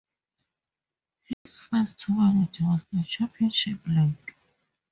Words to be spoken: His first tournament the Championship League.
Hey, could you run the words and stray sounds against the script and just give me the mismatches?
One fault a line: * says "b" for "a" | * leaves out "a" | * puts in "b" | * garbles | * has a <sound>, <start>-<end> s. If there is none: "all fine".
* has a dropout, 1.3-1.5 s
* puts in "was"